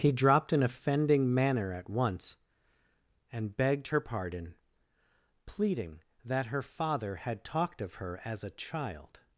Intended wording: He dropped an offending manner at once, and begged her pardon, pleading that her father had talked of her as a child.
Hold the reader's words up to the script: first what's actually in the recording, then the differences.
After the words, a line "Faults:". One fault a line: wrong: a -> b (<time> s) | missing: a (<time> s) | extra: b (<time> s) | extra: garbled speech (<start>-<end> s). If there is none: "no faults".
He dropped an offending manner at once, and begged her pardon, pleading that her father had talked of her as a child.
Faults:
no faults